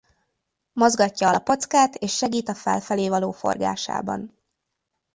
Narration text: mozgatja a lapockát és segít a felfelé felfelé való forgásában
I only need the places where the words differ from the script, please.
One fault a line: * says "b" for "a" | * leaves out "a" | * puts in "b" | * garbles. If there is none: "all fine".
* leaves out "felfelé"